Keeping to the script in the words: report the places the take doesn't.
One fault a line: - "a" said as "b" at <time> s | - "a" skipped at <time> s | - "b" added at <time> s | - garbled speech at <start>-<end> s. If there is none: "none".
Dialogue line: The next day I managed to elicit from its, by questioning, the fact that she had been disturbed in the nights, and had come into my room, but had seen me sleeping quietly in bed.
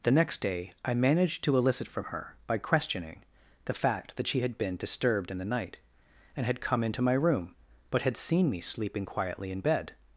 - "its" said as "her" at 2.0 s
- "nights" said as "night" at 5.4 s